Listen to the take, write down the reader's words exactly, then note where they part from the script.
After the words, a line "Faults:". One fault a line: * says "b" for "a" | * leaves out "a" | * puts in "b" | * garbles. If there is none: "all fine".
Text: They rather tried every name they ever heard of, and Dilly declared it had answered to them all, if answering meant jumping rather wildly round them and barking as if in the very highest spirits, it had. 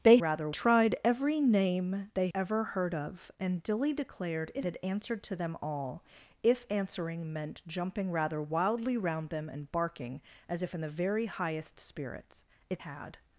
They rather tried every name they ever heard of, and Dilly declared it had answered to them all, if answering meant jumping rather wildly round them and barking as if in the very highest spirits, it had.
Faults:
all fine